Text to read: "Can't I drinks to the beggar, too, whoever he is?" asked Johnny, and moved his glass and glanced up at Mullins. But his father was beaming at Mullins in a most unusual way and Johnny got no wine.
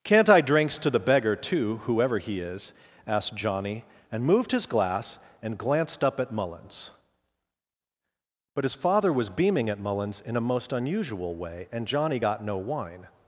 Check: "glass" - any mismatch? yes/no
no